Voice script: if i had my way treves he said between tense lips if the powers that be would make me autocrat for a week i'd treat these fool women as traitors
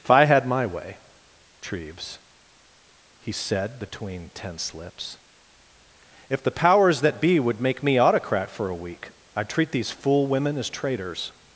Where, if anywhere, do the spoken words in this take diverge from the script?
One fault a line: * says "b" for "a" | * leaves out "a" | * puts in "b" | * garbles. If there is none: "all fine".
all fine